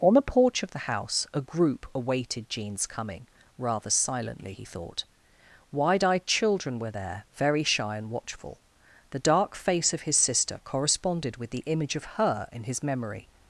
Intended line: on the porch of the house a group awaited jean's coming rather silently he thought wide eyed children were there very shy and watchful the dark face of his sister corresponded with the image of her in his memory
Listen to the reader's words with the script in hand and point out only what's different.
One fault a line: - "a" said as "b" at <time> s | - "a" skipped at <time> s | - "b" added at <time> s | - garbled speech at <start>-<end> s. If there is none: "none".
none